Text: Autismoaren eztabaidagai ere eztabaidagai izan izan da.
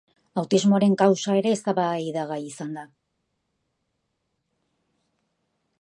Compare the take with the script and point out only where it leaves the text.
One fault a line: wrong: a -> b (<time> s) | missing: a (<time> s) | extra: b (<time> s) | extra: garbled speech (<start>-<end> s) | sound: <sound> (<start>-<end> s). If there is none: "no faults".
wrong: eztabaidagai -> kausa (1.0 s)
missing: izan (2.8 s)